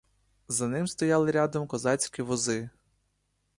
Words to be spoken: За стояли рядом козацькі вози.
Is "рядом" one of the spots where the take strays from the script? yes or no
no